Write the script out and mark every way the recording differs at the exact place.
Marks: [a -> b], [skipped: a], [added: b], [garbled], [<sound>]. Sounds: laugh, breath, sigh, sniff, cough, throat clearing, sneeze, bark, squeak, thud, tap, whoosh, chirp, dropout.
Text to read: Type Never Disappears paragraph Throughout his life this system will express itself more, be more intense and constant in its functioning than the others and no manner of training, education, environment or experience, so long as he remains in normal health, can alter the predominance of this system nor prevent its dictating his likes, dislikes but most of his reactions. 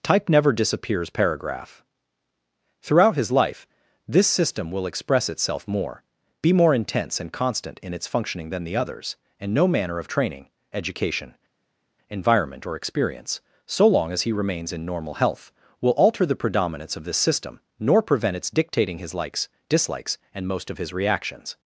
Type Never Disappears paragraph Throughout his life this system will express itself more, be more intense and constant in its functioning than the others and no manner of training, education, environment or experience, so long as he remains in normal health, [can -> will] alter the predominance of this system nor prevent its dictating his likes, dislikes [but -> and] most of his reactions.